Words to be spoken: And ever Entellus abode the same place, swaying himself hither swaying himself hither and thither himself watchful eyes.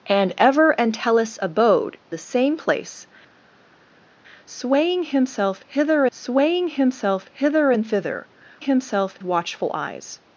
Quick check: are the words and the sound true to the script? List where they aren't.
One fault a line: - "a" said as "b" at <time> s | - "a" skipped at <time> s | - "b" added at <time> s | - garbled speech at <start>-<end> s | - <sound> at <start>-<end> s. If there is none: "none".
none